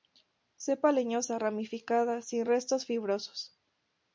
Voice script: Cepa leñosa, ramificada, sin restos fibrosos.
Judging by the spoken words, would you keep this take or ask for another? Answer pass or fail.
pass